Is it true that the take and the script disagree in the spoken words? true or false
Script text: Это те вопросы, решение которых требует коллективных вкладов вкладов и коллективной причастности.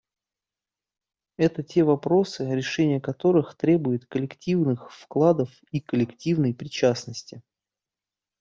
true